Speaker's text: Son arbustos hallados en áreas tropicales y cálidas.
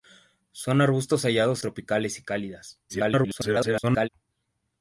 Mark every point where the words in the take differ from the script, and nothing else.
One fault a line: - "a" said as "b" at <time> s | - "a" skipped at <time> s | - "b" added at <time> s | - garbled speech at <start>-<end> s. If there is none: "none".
- "en áreas" skipped at 1.6 s
- garbled speech at 2.9-4.1 s